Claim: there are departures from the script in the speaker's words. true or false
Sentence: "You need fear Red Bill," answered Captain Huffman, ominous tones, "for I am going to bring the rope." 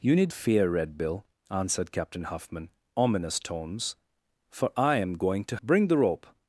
false